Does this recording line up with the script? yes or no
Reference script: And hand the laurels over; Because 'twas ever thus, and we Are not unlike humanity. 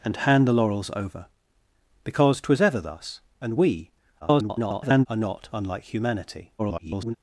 no